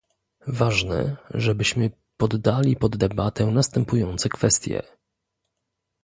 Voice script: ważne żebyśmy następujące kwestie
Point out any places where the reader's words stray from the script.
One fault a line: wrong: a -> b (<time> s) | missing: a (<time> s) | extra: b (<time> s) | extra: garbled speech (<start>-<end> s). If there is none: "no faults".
extra: poddali pod debatę (2.2 s)